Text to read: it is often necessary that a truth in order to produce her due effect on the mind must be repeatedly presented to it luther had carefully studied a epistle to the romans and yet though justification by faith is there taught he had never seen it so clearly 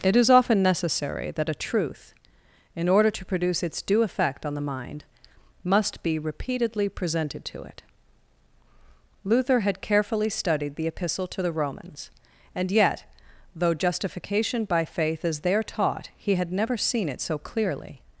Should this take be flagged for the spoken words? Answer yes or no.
yes